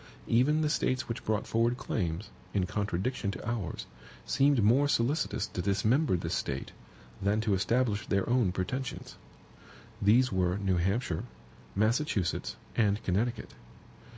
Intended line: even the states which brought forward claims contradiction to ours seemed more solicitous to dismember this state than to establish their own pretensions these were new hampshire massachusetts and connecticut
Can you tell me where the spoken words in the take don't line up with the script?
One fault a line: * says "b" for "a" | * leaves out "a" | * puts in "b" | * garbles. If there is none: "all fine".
* puts in "in"